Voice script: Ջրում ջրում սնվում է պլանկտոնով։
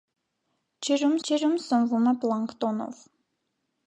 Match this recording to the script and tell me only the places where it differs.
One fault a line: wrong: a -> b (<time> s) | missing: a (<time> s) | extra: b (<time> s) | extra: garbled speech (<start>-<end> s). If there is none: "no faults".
no faults